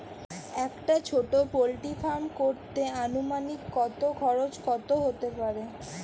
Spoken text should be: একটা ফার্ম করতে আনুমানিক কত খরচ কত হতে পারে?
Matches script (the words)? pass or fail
fail